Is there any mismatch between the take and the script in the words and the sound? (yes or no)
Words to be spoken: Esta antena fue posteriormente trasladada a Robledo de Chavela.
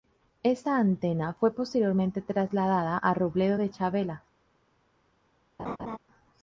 yes